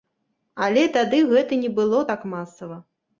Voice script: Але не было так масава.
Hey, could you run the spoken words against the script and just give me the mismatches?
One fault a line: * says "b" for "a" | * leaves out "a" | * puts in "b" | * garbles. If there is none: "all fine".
* puts in "тады гэта"